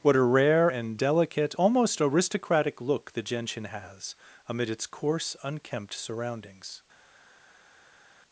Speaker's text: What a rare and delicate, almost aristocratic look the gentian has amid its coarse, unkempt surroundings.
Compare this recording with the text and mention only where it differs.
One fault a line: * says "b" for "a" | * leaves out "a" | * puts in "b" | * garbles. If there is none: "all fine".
all fine